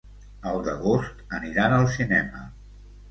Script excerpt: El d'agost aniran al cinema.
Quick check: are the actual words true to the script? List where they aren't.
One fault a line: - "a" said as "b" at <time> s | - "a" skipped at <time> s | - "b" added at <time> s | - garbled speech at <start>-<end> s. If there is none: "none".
none